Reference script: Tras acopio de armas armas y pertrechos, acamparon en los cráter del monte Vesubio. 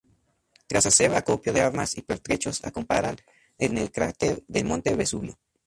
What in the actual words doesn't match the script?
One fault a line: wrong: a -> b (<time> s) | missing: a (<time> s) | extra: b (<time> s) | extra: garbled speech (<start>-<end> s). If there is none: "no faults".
extra: hacer (0.9 s)
missing: armas (1.9 s)
wrong: los -> el (3.8 s)